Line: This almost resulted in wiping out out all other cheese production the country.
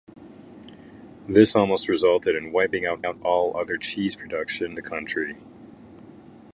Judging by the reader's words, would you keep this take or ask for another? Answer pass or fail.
pass